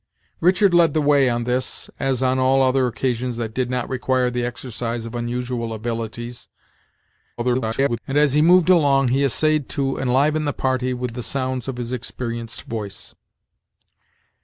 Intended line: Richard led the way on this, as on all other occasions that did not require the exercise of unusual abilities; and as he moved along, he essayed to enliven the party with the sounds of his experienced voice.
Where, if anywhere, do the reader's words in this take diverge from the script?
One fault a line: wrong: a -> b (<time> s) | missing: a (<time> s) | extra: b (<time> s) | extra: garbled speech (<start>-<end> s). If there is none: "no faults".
extra: garbled speech (7.4-8.0 s)